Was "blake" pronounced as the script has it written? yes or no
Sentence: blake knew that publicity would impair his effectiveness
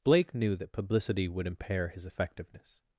yes